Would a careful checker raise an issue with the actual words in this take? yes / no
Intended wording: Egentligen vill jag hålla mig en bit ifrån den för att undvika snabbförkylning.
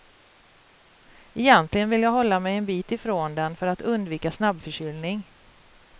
no